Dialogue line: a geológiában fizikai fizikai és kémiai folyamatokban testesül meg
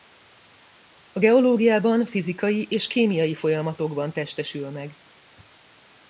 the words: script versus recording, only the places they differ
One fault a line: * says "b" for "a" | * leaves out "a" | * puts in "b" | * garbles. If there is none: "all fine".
* leaves out "fizikai"